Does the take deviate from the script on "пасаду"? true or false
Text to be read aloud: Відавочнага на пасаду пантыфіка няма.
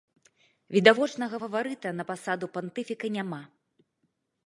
false